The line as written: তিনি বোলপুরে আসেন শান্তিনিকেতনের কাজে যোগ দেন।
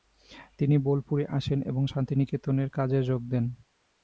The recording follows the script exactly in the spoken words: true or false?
false